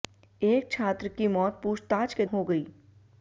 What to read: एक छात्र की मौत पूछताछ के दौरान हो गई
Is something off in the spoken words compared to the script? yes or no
yes